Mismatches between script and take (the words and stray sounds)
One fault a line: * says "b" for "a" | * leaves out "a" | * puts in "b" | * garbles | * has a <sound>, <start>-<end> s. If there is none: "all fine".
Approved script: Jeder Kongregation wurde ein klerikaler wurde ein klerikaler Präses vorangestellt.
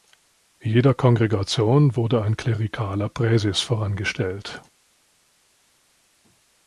* leaves out "wurde ein klerikaler"